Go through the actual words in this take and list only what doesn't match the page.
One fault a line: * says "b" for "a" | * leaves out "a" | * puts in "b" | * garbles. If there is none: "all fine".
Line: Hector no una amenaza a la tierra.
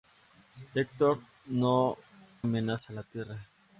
* leaves out "una"